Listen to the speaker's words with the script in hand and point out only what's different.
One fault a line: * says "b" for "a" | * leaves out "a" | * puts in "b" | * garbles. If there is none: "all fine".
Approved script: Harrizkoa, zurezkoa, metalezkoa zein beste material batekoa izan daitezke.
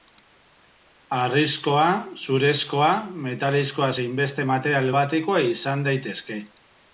all fine